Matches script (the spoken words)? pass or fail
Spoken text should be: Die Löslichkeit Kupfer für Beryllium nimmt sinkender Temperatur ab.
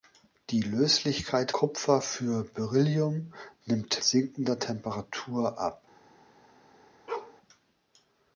pass